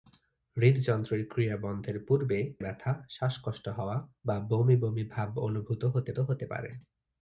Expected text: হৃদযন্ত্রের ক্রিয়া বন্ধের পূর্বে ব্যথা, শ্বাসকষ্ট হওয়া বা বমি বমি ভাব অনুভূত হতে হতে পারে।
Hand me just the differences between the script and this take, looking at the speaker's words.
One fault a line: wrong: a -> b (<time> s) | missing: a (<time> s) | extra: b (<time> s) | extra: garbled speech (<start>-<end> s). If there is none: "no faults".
no faults